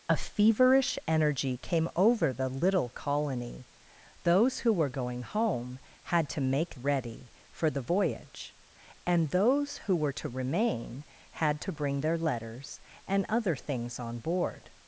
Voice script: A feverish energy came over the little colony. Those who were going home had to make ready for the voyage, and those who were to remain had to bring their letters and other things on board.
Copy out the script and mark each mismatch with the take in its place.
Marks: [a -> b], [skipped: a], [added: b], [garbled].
A feverish energy came over the little colony. Those who were going home had to make ready for the voyage, and those who were to remain had to bring their letters and other things on board.